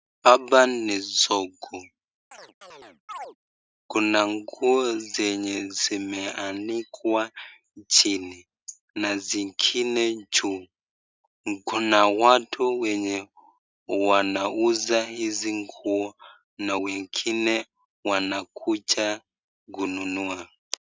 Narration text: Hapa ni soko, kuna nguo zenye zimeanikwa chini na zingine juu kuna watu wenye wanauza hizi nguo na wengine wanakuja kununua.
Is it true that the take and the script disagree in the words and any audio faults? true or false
true